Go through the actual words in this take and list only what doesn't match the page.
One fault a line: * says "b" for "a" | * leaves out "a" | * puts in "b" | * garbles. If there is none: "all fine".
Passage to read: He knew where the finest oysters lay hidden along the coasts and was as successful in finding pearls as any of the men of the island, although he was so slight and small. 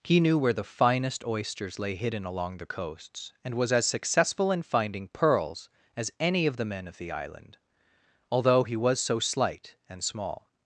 all fine